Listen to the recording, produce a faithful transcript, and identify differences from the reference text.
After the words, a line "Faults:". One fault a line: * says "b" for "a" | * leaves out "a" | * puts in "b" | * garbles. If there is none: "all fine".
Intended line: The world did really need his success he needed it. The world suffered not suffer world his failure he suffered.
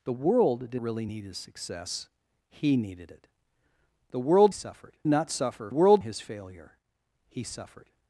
The world did really need his success he needed it. The world suffered not suffer world his failure he suffered.
Faults:
all fine